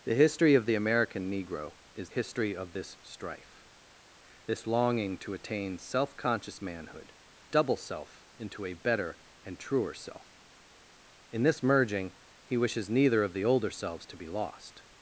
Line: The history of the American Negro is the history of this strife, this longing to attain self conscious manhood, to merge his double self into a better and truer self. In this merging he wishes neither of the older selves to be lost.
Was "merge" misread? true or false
true